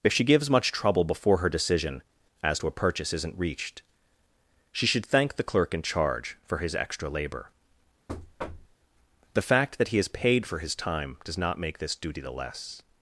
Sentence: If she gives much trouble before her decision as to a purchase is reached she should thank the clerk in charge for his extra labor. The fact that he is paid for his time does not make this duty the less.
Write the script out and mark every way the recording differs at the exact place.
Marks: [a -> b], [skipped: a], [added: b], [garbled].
If she gives much trouble before her decision as to a purchase [is -> isn't] reached she should thank the clerk in charge for his extra labor. The fact that he is paid for his time does not make this duty the less.